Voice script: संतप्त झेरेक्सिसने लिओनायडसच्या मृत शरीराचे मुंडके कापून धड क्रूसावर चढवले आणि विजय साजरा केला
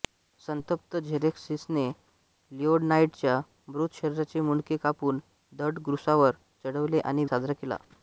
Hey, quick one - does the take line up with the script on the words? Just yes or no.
no